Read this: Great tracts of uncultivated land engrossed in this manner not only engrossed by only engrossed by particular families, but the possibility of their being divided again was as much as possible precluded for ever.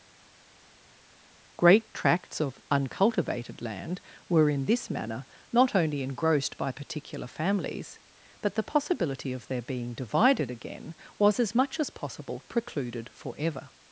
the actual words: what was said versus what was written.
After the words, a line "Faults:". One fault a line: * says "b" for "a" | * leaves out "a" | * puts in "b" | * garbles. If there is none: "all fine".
Great tracts of uncultivated land were in this manner not only engrossed by particular families, but the possibility of their being divided again was as much as possible precluded for ever.
Faults:
* says "were" for "engrossed"
* leaves out "only engrossed by"